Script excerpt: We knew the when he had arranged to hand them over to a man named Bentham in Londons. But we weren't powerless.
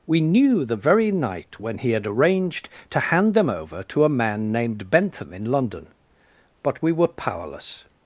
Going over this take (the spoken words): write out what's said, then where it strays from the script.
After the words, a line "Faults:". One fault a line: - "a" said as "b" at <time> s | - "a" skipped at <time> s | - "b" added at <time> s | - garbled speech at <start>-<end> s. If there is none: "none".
We knew the very night when he had arranged to hand them over to a man named Bentham in London. But we were powerless.
Faults:
- "very night" added at 0.8 s
- "Londons" said as "London" at 5.5 s
- "weren't" said as "were" at 6.9 s